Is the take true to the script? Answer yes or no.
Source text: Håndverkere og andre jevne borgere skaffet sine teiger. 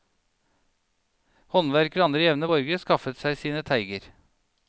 no